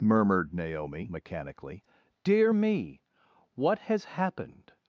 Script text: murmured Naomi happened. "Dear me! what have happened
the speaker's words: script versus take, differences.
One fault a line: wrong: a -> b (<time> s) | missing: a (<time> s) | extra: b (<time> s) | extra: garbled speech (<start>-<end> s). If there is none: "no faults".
wrong: happened -> mechanically (1.1 s)
wrong: have -> has (3.8 s)